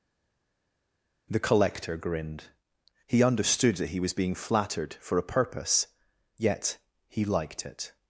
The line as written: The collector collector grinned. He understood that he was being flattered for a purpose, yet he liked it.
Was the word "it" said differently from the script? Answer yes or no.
no